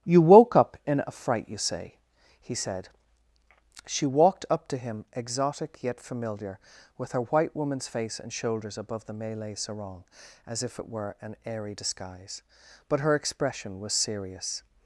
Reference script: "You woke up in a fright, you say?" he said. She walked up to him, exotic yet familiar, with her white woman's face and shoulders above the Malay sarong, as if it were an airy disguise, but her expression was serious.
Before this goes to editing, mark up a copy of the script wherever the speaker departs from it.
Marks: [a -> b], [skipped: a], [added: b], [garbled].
"You woke up in a fright, you say?" he said. She walked up to him, exotic yet familiar, with her white woman's face and shoulders above the Malay sarong, as if it were an airy disguise, but her expression was serious.